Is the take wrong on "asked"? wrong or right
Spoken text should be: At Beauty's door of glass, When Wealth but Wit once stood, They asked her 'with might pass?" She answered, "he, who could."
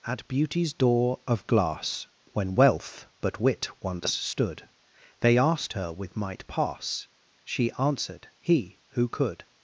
right